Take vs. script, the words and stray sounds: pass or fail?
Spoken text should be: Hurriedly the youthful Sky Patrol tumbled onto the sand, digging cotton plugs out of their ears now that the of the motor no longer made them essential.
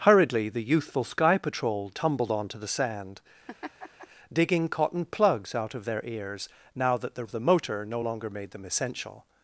fail